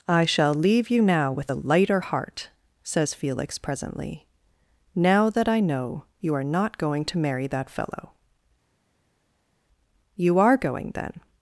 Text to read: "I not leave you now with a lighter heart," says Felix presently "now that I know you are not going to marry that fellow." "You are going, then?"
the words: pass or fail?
fail